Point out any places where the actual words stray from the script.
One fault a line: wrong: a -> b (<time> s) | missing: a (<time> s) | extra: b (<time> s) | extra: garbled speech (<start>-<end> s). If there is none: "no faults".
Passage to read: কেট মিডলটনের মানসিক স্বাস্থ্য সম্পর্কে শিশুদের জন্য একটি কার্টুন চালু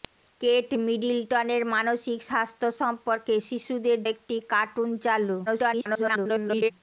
missing: জন্য (4.0 s)
extra: garbled speech (5.5-6.7 s)